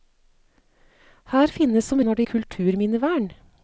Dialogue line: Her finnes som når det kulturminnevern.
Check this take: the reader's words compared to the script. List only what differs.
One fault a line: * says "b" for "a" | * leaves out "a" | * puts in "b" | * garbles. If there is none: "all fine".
all fine